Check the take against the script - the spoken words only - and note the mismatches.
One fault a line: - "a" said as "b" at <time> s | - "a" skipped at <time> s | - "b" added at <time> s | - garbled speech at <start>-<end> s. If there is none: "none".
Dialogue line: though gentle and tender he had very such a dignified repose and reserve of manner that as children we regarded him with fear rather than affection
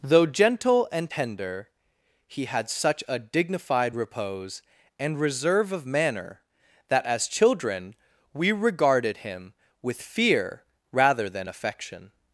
- "very" skipped at 2.7 s